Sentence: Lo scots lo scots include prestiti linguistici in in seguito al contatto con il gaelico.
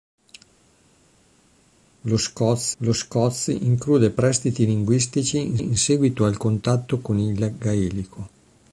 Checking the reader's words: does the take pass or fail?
pass